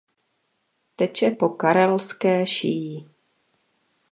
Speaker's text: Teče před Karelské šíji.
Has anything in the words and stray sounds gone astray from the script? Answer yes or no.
yes